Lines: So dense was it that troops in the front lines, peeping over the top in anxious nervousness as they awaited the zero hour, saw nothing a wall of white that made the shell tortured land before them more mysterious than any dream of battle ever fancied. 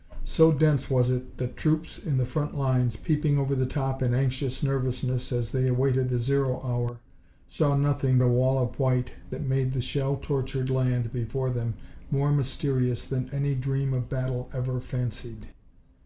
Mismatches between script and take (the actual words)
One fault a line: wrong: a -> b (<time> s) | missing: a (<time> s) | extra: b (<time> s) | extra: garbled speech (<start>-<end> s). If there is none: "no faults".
no faults